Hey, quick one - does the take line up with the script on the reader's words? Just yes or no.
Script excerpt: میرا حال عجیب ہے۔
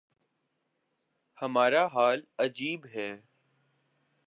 no